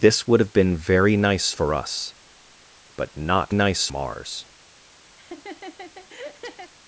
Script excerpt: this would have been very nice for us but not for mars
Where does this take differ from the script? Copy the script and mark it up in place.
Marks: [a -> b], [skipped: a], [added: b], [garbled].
this would have been very nice for us but not [for -> nice] mars